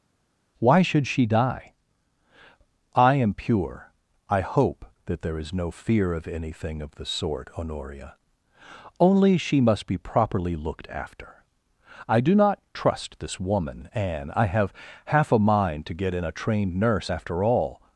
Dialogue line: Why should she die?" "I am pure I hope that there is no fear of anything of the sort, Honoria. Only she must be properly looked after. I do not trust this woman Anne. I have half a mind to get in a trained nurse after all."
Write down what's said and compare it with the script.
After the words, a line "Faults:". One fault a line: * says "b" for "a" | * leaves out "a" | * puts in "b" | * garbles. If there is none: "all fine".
Why should she die?" "I am pure I hope that there is no fear of anything of the sort, Honoria. Only she must be properly looked after. I do not trust this woman Anne. I have half a mind to get in a trained nurse after all."
Faults:
all fine